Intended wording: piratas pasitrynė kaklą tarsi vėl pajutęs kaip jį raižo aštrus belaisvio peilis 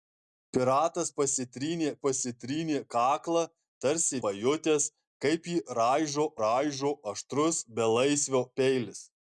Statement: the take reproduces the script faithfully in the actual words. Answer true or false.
false